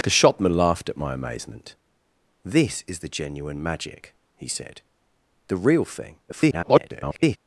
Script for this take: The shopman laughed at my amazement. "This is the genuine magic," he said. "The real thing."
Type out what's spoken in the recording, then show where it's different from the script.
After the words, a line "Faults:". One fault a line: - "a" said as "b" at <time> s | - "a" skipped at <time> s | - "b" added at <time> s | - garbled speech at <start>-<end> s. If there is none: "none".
The shopman laughed at my amazement. "This is the genuine magic," he said. "The real thing." [garbled]
Faults:
- garbled speech at 6.3-7.4 s